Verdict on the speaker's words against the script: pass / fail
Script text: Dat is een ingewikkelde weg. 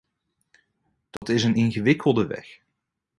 pass